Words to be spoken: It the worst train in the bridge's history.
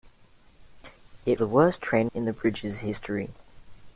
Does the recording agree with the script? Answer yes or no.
yes